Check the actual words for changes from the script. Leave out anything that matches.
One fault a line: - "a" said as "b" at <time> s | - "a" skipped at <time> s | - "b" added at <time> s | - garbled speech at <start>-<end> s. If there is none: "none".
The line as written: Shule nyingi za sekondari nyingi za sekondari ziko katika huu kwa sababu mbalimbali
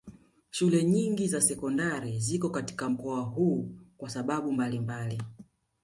- "nyingi za sekondari" skipped at 2.2 s
- "mkoa" added at 2.9 s